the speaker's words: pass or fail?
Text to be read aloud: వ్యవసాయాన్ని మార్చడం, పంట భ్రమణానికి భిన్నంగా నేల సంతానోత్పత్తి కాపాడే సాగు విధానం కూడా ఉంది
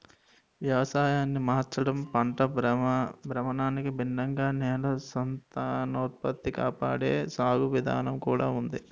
pass